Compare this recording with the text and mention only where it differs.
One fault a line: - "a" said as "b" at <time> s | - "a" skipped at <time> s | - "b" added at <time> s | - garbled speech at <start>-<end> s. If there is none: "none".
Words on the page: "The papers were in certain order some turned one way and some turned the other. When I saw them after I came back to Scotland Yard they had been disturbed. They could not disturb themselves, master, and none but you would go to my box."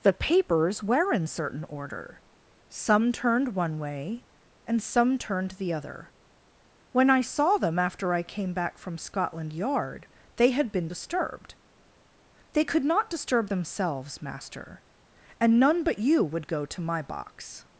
- "to" said as "from" at 8.8 s